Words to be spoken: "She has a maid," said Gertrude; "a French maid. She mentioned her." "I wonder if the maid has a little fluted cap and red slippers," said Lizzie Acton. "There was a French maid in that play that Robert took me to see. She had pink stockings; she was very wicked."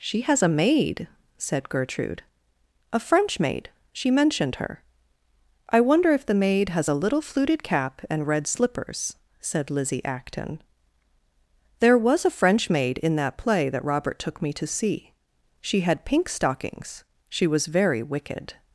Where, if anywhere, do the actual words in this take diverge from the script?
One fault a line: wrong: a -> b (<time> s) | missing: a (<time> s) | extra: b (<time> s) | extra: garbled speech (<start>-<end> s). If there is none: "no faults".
no faults